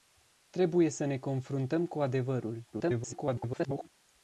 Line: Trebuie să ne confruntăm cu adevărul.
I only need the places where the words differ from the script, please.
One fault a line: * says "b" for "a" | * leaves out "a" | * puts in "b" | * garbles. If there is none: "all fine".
* garbles